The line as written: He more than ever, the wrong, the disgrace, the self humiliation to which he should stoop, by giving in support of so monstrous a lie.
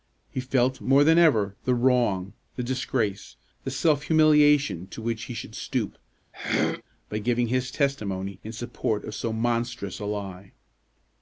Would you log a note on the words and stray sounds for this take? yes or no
yes